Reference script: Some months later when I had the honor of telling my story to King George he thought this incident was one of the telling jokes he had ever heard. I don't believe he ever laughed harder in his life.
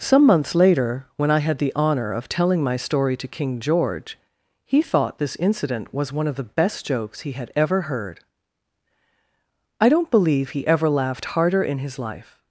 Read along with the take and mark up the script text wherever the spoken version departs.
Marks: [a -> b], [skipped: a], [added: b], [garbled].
Some months later when I had the honor of telling my story to King George he thought this incident was one of the [telling -> best] jokes he had ever heard. I don't believe he ever laughed harder in his life.